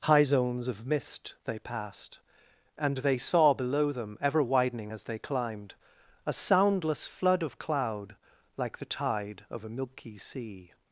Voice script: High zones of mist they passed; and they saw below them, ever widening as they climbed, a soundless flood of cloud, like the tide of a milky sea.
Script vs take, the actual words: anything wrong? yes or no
no